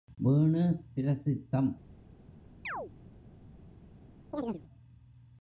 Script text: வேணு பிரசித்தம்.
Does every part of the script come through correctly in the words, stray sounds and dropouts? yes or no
no